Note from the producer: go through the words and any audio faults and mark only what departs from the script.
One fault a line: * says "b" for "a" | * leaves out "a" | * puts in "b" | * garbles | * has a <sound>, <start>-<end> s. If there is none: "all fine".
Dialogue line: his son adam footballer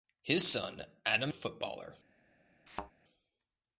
* has a thud, 2.7-2.9 s